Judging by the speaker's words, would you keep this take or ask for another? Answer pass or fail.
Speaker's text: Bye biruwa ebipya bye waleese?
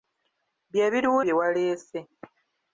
fail